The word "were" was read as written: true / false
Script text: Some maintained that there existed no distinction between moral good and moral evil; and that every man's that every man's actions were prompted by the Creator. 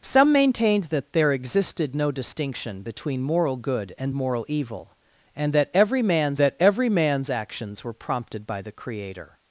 true